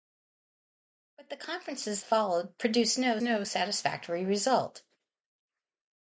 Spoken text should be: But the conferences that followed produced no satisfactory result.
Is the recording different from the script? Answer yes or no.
yes